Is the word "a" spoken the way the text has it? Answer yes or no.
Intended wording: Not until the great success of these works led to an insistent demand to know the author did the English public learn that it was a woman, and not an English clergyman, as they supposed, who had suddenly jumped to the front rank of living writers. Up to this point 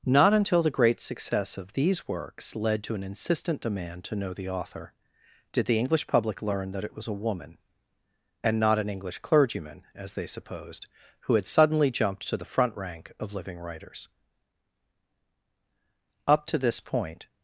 yes